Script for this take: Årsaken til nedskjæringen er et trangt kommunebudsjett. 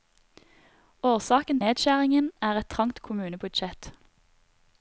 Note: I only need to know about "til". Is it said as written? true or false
false